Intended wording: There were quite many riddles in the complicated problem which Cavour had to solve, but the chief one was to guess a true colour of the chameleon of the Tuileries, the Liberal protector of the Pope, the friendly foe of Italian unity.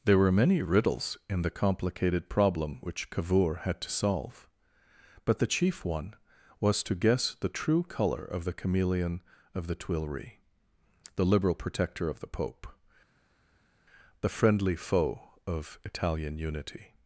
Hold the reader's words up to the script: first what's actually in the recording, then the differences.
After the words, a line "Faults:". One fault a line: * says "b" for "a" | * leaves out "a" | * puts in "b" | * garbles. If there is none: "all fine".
There were many riddles in the complicated problem which Cavour had to solve, but the chief one was to guess the true colour of the chameleon of the Tuileries, the Liberal protector of the Pope, the friendly foe of Italian unity.
Faults:
* leaves out "quite"
* says "the" for "a"